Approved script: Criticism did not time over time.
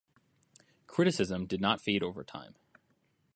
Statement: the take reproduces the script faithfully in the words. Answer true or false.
false